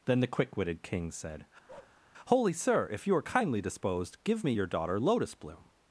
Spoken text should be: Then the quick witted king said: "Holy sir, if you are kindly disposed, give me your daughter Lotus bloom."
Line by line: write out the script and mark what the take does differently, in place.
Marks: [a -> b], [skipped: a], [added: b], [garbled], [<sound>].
Then the quick witted king said: [bark] "Holy sir, if you are kindly disposed, give me your daughter Lotus bloom."